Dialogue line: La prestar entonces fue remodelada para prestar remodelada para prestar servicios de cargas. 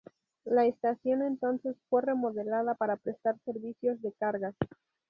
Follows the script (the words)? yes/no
no